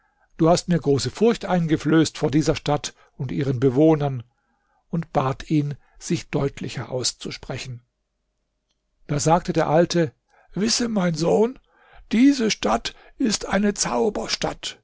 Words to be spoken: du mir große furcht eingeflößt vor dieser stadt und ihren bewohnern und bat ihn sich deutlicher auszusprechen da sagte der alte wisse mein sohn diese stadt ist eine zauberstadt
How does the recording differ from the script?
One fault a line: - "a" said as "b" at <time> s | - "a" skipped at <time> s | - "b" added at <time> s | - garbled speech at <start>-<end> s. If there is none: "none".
- "hast" added at 0.5 s